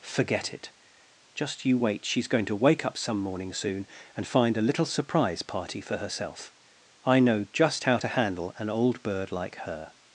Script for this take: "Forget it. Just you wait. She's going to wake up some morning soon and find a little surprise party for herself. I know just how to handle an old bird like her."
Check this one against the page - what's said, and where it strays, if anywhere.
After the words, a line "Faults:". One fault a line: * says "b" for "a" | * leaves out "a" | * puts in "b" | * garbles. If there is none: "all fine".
"Forget it. Just you wait. She's going to wake up some morning soon and find a little surprise party for herself. I know just how to handle an old bird like her."
Faults:
all fine